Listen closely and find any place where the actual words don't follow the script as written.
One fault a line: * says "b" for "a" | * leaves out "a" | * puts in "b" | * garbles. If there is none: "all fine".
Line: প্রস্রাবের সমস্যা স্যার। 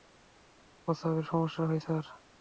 * puts in "হয়"